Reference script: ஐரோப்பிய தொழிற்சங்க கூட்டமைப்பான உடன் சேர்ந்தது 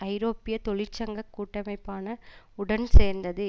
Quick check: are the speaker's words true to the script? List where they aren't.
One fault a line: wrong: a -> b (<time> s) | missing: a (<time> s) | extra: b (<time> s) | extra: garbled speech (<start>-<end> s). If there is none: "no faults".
no faults